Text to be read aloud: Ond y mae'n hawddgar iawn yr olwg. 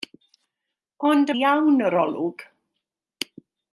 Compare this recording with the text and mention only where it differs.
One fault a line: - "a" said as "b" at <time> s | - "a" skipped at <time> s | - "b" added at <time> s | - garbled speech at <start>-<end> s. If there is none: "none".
- "mae'n hawddgar" skipped at 1.4 s